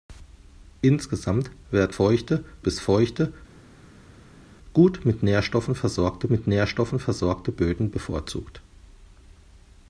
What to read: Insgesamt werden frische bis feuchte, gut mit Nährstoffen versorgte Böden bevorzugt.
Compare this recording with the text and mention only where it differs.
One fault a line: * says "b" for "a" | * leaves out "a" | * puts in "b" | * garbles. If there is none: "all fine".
* says "feuchte" for "frische"
* puts in "mit Nährstoffen versorgte"